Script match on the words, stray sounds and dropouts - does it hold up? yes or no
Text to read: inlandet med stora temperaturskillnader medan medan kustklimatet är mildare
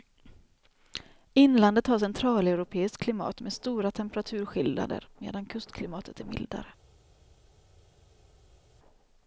no